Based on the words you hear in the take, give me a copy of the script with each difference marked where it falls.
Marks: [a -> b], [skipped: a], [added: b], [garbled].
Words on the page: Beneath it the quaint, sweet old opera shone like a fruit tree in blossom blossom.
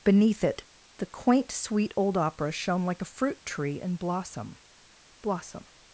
Beneath it the quaint, sweet old opera shone like a fruit tree in blossom blossom.